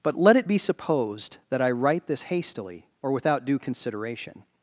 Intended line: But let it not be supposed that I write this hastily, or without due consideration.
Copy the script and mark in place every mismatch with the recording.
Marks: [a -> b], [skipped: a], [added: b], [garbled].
But let it [skipped: not] be supposed that I write this hastily, or without due consideration.